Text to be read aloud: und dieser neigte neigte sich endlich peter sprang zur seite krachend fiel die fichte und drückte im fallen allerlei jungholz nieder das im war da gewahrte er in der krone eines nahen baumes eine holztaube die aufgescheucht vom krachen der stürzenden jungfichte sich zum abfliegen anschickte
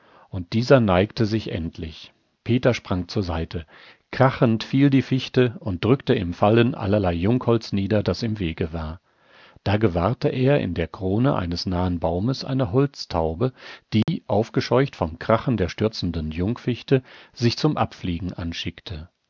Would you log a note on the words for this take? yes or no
yes